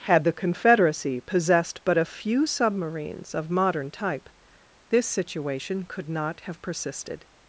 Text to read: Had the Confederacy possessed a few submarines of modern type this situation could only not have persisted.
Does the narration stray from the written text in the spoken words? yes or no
yes